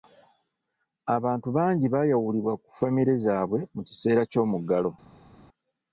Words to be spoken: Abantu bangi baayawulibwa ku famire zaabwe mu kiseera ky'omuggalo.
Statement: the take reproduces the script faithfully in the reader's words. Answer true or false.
true